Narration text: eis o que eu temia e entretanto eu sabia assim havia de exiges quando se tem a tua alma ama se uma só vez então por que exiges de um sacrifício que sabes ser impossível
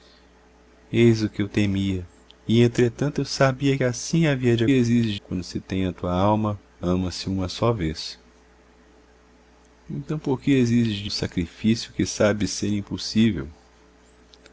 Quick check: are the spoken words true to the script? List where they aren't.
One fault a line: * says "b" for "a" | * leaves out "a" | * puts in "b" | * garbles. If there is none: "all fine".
all fine